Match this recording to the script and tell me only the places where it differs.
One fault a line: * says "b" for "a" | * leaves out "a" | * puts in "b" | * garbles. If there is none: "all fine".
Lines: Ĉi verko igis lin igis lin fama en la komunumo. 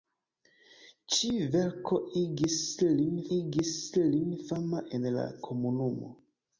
all fine